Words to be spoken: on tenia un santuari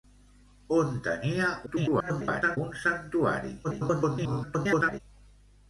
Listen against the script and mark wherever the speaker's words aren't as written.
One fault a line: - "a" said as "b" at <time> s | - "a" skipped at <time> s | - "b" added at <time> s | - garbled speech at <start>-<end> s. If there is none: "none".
- garbled speech at 1.7-2.6 s
- garbled speech at 3.6-5.0 s